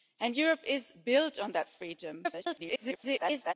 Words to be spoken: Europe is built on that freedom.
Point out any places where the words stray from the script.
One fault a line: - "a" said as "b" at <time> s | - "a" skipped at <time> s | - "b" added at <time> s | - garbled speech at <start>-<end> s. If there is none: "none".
- garbled speech at 2.2-3.5 s